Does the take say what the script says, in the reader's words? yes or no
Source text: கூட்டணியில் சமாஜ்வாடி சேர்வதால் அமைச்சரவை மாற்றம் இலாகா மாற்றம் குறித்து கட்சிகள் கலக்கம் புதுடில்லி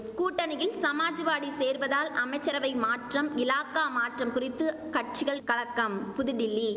yes